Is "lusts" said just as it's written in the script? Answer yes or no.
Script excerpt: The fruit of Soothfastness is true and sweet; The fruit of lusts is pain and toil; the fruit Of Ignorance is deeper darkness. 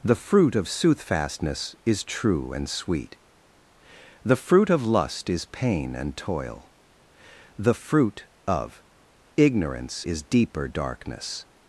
no